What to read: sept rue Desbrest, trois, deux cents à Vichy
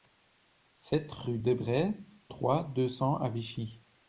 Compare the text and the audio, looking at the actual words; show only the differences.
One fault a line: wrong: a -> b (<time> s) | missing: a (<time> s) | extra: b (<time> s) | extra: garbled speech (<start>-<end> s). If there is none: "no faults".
no faults